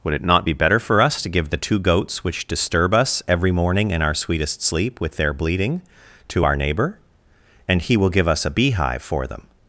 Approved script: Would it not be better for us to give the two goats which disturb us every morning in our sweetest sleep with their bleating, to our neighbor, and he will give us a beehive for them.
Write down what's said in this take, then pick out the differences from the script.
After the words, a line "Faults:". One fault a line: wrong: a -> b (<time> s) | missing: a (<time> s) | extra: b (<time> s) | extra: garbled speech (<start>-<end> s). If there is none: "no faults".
Would it not be better for us to give the two goats which disturb us every morning in our sweetest sleep with their bleating, to our neighbor, and he will give us a beehive for them.
Faults:
no faults